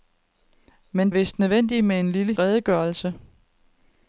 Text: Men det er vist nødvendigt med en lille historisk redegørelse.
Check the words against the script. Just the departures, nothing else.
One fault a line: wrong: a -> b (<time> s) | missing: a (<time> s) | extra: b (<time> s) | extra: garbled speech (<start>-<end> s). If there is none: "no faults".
missing: det (1.1 s)
missing: historisk (2.3 s)